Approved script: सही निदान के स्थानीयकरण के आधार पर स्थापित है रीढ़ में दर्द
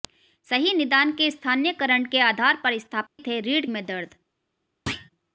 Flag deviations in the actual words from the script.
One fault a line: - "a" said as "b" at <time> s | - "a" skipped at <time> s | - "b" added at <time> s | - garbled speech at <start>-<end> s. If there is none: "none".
none